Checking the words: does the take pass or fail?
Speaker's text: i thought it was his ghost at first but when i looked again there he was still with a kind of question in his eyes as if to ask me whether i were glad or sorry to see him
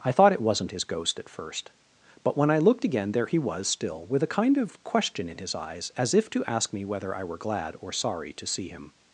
fail